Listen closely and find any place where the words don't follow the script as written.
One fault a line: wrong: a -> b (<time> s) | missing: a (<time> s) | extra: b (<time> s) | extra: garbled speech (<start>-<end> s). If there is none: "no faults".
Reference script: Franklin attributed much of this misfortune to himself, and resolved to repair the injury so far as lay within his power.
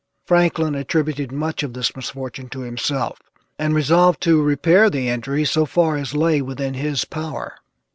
no faults